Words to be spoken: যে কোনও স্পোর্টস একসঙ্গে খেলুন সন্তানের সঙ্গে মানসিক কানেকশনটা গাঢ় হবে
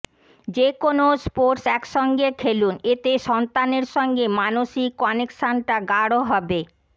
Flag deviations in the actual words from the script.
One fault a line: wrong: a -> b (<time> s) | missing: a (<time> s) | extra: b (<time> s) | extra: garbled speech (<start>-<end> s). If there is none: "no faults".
extra: এতে (2.9 s)